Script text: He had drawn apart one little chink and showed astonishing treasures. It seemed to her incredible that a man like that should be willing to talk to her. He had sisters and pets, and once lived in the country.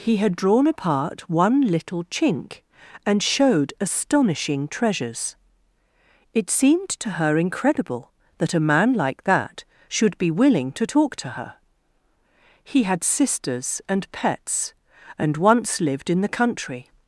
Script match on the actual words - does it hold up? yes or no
yes